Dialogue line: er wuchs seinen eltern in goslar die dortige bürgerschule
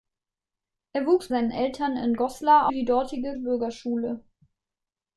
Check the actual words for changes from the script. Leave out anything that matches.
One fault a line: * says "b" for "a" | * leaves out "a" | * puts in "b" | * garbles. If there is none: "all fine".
all fine